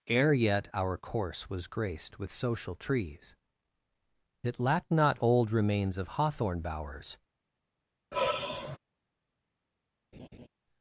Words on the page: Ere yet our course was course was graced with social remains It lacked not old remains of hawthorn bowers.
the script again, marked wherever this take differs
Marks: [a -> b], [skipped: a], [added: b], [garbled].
Ere yet our course was [skipped: course was] graced with social [remains -> trees] It lacked not old remains of hawthorn bowers.